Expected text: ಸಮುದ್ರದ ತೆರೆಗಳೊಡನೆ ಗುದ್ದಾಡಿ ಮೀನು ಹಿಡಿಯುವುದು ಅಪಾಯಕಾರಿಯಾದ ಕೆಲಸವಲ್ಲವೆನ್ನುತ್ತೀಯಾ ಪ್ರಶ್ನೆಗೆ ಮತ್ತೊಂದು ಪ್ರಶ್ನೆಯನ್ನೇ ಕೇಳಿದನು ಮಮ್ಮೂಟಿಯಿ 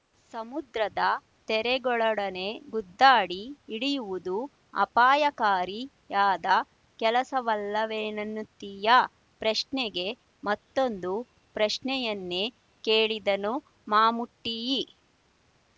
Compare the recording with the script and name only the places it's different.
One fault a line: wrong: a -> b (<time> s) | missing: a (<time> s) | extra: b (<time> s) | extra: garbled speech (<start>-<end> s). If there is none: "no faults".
missing: ಮೀನು (3.4 s)